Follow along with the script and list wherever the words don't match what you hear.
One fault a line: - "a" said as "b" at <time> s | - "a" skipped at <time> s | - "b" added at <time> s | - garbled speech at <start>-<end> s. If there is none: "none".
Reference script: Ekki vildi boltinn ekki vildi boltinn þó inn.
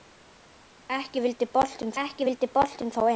none